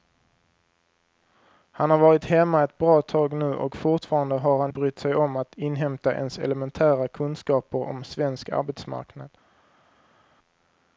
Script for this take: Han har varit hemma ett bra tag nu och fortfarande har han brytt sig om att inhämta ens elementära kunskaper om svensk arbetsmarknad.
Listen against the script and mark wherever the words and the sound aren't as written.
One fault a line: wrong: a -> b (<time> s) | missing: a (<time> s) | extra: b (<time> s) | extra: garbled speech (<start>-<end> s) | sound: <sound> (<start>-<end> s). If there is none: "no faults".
no faults